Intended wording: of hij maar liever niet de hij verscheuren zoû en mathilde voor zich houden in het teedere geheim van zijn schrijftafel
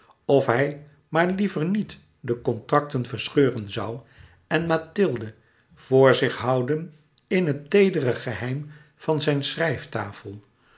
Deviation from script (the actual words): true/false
true